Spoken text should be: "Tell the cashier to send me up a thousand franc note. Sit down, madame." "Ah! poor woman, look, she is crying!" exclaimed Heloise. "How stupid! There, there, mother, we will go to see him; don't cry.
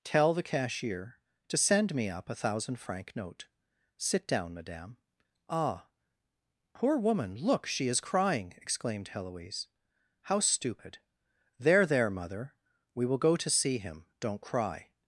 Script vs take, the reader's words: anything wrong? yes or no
no